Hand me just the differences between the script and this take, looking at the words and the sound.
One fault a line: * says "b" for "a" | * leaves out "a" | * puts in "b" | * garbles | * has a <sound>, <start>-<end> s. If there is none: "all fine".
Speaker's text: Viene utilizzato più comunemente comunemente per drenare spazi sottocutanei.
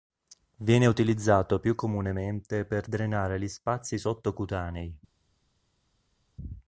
* leaves out "comunemente"
* puts in "gli"